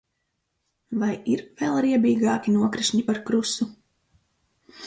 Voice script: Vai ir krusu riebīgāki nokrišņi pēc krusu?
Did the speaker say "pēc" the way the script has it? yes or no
no